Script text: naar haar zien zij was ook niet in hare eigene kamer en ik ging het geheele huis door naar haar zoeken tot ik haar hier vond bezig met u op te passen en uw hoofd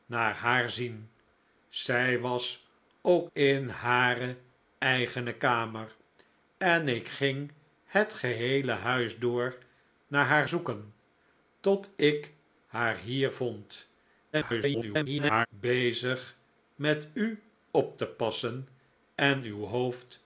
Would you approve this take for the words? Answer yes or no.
no